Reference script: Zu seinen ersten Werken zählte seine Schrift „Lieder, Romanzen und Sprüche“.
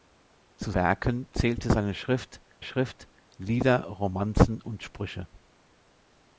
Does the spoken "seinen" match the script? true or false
false